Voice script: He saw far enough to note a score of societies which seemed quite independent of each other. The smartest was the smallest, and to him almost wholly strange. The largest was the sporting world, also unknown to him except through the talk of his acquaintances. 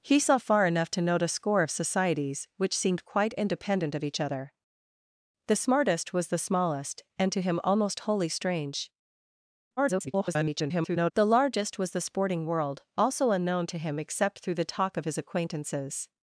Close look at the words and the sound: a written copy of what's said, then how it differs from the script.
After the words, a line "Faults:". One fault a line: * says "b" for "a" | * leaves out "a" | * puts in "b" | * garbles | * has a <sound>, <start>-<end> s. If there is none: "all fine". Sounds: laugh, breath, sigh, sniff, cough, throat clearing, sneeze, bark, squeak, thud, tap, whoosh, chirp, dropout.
He saw far enough to note a score of societies which seemed quite independent of each other. The smartest was the smallest, and to him almost wholly strange. [garbled] The largest was the sporting world, also unknown to him except through the talk of his acquaintances.
Faults:
* garbles